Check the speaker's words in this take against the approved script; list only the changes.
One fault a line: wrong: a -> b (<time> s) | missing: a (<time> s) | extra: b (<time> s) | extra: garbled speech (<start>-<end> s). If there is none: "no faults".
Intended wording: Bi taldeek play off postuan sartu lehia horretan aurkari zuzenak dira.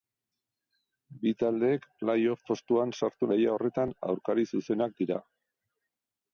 no faults